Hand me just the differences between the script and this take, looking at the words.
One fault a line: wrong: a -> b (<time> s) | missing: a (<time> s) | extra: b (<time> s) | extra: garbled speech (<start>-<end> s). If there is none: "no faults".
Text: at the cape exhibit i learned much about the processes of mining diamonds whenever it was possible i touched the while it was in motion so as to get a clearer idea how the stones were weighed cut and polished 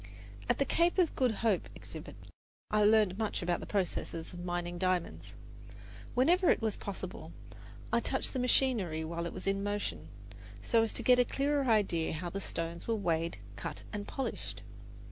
extra: of good hope (1.0 s)
extra: machinery (8.4 s)